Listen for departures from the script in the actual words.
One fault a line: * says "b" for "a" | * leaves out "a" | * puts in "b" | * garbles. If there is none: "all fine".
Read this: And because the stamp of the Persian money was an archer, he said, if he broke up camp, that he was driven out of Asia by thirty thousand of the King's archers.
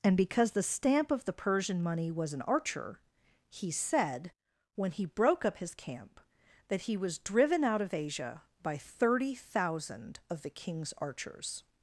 * says "when" for "if"
* puts in "his"